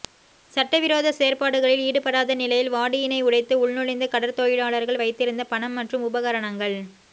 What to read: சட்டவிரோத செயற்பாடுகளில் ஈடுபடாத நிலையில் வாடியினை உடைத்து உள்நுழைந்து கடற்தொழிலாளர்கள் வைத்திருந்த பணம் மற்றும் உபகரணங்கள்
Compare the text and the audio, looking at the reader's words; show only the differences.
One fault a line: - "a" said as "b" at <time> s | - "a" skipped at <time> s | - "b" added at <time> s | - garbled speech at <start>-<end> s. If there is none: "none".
none